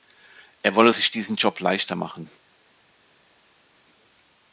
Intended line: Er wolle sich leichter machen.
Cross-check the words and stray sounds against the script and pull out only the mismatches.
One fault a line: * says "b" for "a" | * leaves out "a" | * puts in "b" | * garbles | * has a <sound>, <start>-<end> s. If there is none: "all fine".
* puts in "diesen Job"